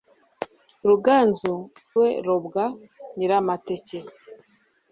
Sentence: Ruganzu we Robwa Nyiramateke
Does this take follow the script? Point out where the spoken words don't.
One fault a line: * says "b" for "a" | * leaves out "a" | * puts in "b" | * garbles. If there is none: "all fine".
all fine